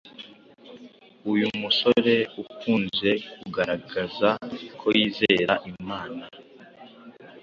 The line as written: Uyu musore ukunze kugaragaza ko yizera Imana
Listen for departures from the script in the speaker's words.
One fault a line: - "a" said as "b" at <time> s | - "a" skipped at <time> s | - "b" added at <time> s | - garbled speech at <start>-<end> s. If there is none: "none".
none